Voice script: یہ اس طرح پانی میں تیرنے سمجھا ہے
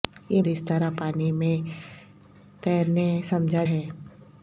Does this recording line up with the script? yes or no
yes